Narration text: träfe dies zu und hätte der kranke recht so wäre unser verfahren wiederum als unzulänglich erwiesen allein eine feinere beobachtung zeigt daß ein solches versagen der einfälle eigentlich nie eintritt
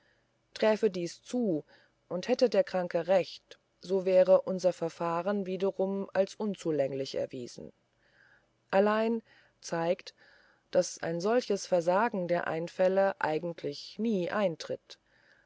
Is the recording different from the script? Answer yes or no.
yes